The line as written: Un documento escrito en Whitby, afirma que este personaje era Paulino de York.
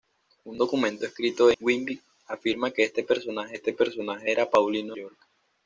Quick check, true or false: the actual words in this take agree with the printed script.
false